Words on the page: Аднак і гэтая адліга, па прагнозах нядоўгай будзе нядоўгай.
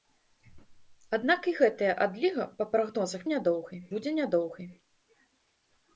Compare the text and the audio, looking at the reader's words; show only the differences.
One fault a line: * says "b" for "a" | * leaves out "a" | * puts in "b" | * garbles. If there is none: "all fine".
all fine